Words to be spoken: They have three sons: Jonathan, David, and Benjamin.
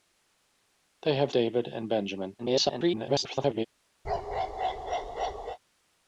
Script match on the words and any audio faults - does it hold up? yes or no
no